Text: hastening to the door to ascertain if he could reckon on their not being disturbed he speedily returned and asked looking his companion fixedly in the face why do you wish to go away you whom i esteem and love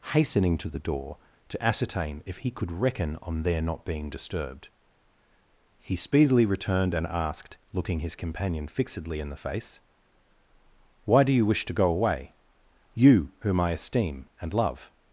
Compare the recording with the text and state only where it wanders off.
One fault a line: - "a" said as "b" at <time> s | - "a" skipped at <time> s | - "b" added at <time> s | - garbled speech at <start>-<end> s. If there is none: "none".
none